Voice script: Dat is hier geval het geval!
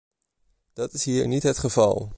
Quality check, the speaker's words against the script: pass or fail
fail